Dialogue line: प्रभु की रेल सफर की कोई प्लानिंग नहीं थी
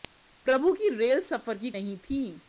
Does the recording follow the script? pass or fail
fail